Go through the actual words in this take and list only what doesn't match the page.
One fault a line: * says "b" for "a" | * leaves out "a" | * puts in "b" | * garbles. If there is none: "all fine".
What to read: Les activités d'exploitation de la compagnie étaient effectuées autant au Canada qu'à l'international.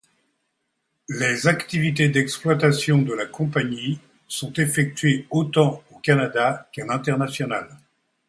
* says "sont" for "étaient"